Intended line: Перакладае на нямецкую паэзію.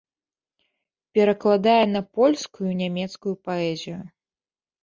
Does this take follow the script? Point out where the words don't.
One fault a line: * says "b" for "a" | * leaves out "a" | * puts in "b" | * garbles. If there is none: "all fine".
* puts in "польскую"